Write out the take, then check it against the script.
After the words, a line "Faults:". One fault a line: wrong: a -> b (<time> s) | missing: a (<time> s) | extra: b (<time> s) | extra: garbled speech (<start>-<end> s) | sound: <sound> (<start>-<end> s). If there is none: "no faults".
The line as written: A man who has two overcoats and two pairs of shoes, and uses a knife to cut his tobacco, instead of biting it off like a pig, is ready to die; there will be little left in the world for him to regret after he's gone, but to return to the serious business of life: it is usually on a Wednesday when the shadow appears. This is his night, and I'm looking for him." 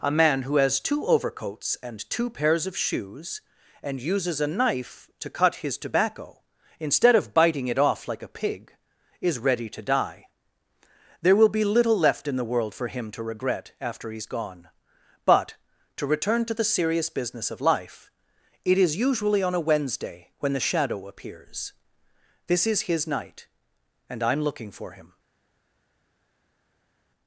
A man who has two overcoats and two pairs of shoes, and uses a knife to cut his tobacco, instead of biting it off like a pig, is ready to die; there will be little left in the world for him to regret after he's gone, but to return to the serious business of life: it is usually on a Wednesday when the shadow appears. This is his night, and I'm looking for him."
Faults:
no faults